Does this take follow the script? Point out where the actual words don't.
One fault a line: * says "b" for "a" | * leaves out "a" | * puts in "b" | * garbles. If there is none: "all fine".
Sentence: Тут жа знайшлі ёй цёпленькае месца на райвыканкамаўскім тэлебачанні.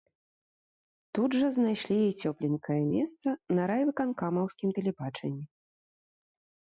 all fine